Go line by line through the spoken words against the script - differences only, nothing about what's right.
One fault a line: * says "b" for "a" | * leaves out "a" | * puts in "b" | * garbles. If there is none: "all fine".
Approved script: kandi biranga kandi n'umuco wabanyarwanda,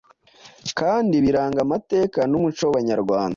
* says "amateka" for "kandi"